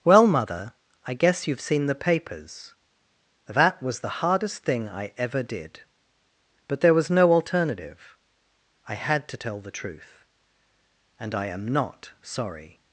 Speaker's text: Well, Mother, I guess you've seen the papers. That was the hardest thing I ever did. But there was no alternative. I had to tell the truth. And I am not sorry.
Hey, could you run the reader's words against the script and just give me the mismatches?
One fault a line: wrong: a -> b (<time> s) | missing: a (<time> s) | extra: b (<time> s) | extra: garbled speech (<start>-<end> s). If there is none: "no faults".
no faults